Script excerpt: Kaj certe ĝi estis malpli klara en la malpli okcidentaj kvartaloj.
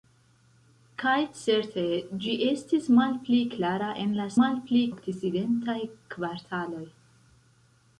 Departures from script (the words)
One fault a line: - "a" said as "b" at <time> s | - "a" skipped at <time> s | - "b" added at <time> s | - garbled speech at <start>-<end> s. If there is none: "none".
none